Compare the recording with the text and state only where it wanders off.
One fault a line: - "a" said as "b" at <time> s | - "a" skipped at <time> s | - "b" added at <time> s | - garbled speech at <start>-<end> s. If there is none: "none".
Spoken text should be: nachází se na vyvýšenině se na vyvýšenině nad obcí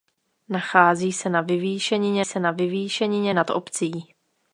none